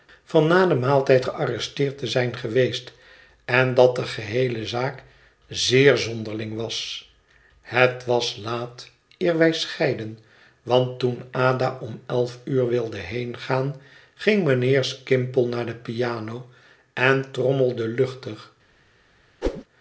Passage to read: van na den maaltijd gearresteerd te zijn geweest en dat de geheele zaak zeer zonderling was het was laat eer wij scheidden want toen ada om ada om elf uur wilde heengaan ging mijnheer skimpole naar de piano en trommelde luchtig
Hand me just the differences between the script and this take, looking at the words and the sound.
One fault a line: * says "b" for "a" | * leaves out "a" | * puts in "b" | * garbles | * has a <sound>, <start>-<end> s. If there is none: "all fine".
* leaves out "ada om"
* has a whoosh, 19.4-19.6 s